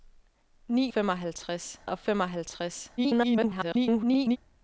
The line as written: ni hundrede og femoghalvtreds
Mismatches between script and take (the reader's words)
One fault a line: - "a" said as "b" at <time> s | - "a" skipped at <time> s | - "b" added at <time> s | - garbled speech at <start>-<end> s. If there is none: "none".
- "hundrede" said as "femoghalvtreds" at 0.9 s
- garbled speech at 3.0-4.4 s